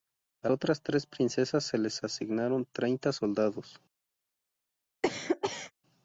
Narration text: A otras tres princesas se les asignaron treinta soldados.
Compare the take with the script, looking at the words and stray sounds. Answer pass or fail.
fail